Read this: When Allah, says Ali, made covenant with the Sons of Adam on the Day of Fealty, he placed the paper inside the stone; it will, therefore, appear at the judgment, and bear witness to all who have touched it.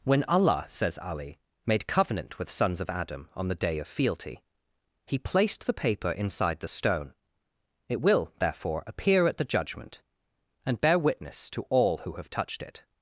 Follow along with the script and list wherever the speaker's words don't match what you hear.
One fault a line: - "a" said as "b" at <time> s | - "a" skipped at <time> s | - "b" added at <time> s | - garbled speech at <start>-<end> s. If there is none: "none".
- "the" skipped at 2.5 s